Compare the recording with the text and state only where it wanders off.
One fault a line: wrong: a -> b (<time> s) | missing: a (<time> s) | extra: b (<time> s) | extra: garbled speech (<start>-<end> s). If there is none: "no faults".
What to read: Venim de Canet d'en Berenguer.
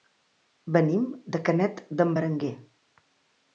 no faults